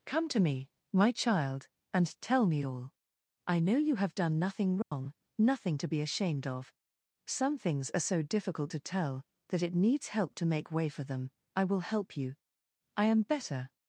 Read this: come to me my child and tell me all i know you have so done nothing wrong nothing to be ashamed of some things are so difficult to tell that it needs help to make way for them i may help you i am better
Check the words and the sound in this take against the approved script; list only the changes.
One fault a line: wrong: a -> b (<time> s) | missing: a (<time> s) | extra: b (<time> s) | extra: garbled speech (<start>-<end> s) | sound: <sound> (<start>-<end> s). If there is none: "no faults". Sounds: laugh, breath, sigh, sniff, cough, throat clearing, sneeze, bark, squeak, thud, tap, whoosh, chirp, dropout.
missing: so (4.2 s)
sound: dropout (4.8-4.9 s)
wrong: may -> will (11.6 s)